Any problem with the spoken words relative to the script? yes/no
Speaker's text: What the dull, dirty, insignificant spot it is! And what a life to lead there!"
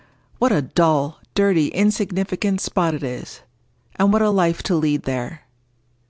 yes